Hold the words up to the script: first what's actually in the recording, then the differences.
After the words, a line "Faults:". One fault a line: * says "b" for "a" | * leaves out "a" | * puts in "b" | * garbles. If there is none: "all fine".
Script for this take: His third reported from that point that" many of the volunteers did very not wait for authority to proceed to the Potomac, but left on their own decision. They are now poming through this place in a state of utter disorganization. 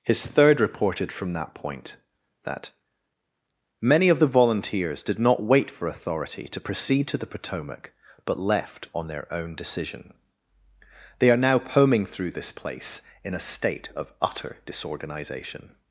His third reported from that point that" many of the volunteers did not wait for authority to proceed to the Potomac, but left on their own decision. They are now poming through this place in a state of utter disorganization.
Faults:
* leaves out "very"